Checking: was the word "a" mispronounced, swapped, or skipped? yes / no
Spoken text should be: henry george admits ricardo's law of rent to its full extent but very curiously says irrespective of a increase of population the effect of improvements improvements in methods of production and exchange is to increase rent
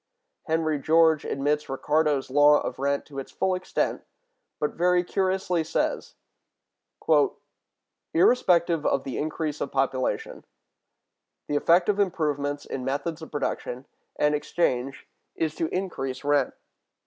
yes